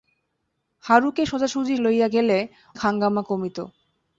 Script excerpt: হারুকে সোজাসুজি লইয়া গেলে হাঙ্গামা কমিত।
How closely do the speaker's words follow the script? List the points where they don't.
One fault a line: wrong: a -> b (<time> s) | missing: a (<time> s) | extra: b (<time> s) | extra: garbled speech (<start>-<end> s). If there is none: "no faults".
no faults